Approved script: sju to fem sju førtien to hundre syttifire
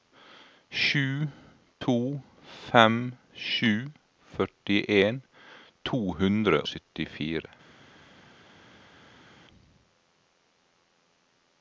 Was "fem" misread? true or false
false